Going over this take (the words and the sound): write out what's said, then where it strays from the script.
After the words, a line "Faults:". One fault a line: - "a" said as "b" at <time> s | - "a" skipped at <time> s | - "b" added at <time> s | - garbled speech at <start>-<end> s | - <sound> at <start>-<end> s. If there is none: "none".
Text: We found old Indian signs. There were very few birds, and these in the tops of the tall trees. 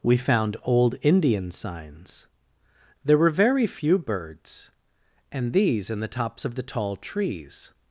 We found old Indian signs. There were very few birds, and these in the tops of the tall trees.
Faults:
none